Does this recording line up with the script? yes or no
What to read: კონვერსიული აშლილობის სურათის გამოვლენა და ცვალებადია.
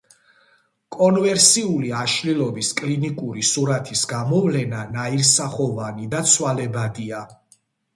no